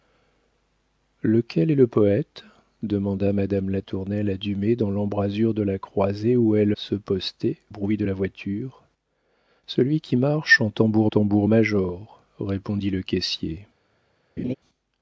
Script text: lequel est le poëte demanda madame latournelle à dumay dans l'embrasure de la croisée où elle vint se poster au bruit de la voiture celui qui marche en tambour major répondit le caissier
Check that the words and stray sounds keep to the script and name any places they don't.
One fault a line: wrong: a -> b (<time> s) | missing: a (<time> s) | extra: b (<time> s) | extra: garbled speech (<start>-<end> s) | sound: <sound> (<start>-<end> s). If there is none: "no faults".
missing: vint (6.7 s)
missing: au (7.6 s)
extra: tambour (11.0 s)
sound: laugh (14.4-14.5 s)